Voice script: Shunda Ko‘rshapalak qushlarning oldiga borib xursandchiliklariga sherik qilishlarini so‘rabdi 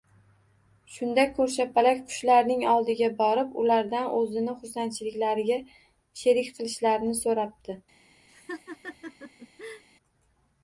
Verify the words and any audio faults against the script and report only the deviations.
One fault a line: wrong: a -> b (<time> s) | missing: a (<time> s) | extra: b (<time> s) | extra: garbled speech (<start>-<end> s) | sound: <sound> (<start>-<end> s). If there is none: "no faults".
extra: ulardan o‘zini (3.6 s)
sound: laugh (8.3-9.8 s)